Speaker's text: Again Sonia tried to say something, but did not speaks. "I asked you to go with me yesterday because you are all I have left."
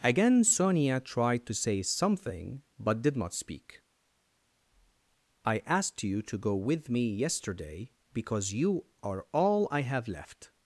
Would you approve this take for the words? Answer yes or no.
no